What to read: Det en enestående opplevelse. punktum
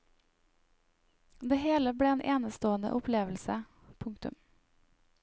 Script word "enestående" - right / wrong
right